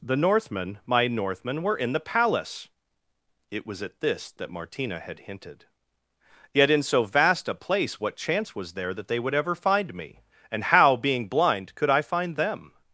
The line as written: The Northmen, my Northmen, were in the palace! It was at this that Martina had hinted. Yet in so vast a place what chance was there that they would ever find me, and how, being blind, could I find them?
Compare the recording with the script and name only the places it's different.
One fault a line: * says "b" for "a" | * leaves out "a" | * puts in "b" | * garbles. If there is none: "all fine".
all fine